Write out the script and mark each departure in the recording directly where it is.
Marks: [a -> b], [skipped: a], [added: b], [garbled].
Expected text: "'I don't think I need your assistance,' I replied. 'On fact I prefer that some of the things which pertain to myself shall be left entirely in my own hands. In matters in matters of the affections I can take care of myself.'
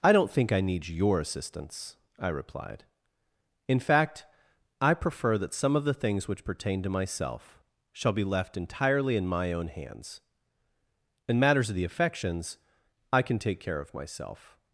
"'I don't think I need your assistance,' I replied. ['On -> In] fact I prefer that some of the things which pertain to myself shall be left entirely in my own hands. In matters [skipped: in matters] of the affections I can take care of myself.'